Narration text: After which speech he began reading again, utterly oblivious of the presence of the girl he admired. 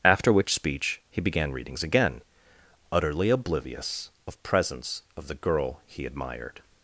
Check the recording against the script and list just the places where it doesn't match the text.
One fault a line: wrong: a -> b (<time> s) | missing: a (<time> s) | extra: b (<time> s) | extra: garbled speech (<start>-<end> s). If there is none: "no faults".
wrong: reading -> readings (1.5 s)
missing: the (4.4 s)